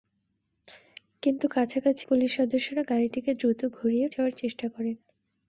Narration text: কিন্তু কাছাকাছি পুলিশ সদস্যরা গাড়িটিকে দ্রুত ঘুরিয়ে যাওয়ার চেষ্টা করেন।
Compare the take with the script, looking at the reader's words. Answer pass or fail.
pass